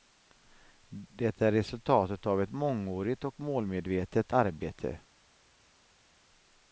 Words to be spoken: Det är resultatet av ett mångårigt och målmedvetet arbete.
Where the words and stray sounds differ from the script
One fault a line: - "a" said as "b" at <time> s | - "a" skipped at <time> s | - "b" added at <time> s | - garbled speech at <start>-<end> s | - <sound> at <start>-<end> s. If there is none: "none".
none